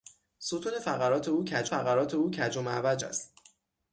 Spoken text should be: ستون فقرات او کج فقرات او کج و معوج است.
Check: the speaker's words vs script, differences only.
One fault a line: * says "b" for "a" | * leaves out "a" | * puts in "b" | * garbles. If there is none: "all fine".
all fine